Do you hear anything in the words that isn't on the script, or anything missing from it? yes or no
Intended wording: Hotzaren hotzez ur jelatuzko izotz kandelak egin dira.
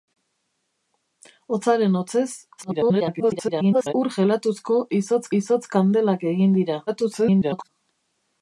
yes